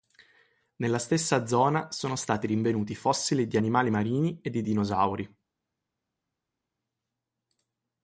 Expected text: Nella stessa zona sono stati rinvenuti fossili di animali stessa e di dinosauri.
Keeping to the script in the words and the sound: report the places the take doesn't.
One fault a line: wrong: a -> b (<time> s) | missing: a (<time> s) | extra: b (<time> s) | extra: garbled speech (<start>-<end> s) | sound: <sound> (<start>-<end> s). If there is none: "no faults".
wrong: stessa -> marini (3.9 s)